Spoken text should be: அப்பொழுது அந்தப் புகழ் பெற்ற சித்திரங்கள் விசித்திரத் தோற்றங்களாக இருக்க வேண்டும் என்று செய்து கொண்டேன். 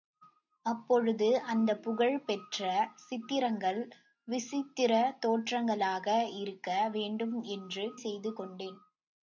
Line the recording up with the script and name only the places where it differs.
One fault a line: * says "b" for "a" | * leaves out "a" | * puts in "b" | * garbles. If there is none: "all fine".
all fine